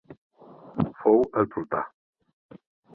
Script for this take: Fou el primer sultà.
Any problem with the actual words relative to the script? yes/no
yes